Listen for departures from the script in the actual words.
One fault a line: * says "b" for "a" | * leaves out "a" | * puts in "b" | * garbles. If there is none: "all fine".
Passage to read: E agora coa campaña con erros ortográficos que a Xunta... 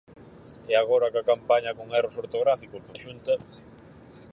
all fine